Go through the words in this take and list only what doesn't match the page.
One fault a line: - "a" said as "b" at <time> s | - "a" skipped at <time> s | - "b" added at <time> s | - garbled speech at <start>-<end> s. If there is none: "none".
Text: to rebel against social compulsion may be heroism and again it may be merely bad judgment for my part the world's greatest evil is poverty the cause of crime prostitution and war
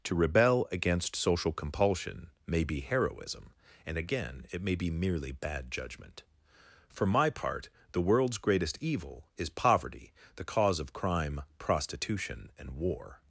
none